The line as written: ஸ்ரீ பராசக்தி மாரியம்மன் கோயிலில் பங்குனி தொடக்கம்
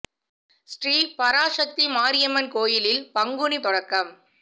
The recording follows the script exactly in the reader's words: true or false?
true